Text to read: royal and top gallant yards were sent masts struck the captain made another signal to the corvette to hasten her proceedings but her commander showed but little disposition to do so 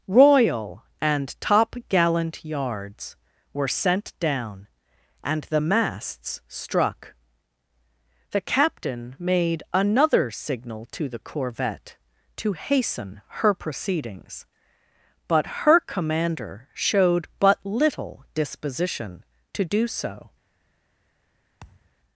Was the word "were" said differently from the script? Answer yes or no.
no